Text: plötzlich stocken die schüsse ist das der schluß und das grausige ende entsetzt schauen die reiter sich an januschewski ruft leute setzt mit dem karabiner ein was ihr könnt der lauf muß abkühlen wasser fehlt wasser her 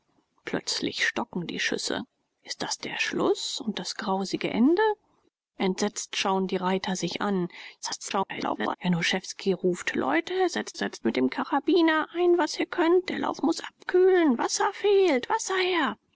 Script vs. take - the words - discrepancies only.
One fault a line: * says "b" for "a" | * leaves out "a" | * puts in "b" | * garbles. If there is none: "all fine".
* garbles
* puts in "setzt"